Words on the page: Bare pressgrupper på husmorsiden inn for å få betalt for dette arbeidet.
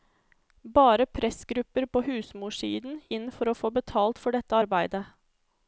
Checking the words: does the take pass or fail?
pass